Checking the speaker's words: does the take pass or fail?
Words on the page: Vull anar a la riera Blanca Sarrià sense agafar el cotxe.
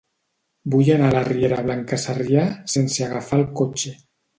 pass